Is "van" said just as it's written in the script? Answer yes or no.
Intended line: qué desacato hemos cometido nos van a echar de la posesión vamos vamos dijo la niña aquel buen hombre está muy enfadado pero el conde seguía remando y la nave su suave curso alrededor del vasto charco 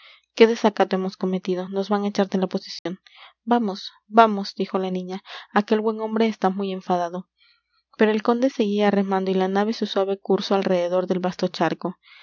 yes